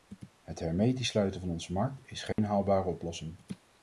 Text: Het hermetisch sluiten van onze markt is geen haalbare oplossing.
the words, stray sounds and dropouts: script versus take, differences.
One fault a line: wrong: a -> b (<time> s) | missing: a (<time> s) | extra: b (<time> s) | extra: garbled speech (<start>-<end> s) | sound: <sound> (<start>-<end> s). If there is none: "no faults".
sound: dropout (2.3-2.4 s)